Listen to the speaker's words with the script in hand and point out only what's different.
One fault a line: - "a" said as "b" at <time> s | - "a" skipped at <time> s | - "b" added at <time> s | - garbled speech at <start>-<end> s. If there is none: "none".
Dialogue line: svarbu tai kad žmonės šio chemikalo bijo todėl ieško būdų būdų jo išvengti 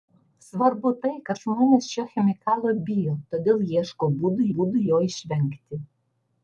none